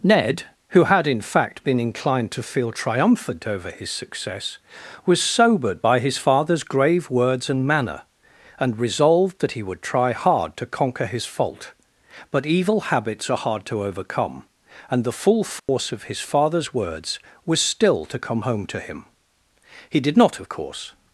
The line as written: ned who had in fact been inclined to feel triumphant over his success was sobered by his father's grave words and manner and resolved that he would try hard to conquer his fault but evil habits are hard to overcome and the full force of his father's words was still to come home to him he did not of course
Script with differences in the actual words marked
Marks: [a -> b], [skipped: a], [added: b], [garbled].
ned who had in fact been inclined to feel triumphant over his success was sobered by his father's grave words and manner and resolved that he would try hard to conquer his fault but evil habits are hard to overcome and the full force of his father's words was still to come home to him he did not of course